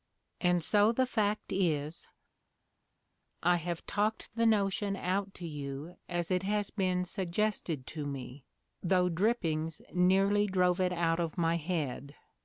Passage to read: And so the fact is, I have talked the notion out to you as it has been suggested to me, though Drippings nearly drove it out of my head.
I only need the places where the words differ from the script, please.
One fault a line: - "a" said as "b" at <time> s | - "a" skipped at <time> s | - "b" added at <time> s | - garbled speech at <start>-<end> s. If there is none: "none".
none